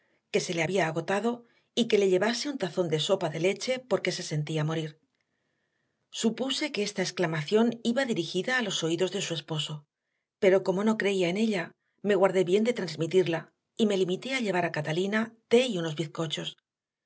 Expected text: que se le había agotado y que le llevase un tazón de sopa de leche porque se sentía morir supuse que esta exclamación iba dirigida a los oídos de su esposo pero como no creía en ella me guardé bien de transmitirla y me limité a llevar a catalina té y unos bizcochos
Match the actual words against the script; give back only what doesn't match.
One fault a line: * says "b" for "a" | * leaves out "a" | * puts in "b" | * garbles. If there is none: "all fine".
all fine